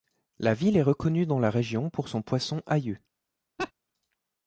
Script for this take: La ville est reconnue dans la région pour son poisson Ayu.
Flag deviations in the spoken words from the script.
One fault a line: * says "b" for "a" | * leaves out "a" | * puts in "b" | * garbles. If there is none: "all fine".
all fine